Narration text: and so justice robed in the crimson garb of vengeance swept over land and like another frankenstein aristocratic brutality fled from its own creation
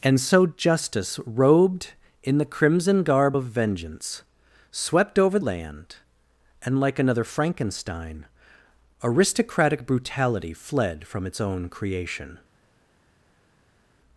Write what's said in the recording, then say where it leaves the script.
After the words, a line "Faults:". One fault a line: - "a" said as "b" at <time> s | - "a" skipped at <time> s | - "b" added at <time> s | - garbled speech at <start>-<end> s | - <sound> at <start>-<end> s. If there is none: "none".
and so justice robed in the crimson garb of vengeance swept over land and like another frankenstein aristocratic brutality fled from its own creation
Faults:
none